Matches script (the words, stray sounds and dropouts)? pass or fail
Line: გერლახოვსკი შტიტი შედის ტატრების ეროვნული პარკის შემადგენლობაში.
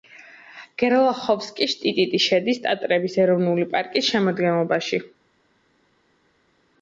pass